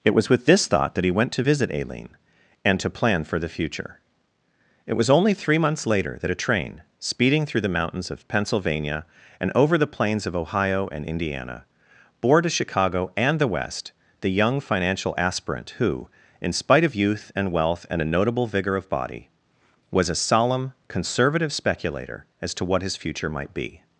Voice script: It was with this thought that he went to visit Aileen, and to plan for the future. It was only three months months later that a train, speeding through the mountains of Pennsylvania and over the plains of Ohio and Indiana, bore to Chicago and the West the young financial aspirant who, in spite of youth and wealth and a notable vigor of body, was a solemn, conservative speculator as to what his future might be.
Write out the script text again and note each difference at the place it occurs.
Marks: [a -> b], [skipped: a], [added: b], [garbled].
It was with this thought that he went to visit Aileen, and to plan for the future. It was only three months [skipped: months] later that a train, speeding through the mountains of Pennsylvania and over the plains of Ohio and Indiana, bore to Chicago and the West the young financial aspirant who, in spite of youth and wealth and a notable vigor of body, was a solemn, conservative speculator as to what his future might be.